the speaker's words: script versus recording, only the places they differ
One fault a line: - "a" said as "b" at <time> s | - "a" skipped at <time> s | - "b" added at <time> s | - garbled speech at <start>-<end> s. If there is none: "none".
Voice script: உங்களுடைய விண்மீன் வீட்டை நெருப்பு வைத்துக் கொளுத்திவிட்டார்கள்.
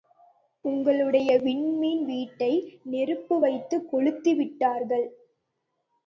none